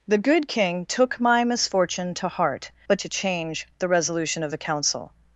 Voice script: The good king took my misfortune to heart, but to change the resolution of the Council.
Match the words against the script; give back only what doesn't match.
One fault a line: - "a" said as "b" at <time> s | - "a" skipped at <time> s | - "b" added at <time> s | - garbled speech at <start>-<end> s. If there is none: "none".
none